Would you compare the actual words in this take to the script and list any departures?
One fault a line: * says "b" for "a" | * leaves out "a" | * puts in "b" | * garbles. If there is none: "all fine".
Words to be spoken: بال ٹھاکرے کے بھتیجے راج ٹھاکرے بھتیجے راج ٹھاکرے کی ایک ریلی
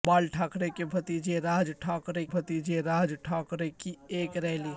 all fine